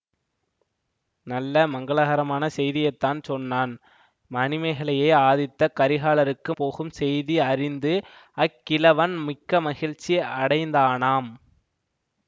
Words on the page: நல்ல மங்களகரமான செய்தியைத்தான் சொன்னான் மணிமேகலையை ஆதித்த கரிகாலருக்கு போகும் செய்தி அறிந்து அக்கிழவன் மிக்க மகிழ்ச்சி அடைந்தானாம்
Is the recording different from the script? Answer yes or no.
no